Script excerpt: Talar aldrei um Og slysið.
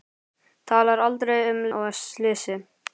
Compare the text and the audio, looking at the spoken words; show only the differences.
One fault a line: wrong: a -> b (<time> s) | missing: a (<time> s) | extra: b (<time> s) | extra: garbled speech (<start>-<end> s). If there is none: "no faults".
no faults